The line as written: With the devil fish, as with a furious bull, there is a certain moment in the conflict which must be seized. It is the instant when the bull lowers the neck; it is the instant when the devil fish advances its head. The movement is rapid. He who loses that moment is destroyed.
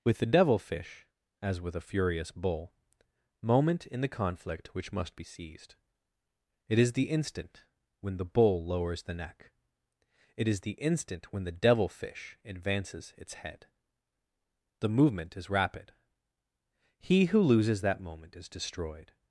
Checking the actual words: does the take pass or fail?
fail